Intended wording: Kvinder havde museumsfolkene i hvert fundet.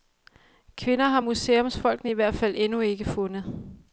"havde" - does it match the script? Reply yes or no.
no